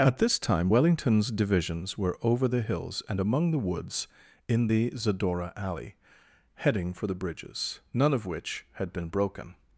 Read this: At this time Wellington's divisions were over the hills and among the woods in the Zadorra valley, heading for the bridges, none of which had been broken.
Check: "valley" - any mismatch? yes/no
yes